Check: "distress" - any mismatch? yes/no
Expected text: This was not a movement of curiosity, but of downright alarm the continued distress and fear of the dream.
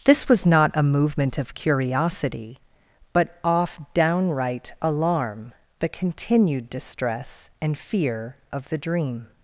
no